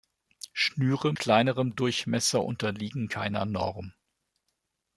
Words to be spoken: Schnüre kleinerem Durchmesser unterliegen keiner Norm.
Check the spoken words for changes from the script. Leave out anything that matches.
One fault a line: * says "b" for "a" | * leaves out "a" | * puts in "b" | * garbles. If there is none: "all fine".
all fine